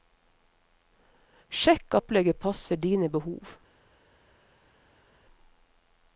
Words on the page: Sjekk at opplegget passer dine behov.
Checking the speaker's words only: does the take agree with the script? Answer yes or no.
no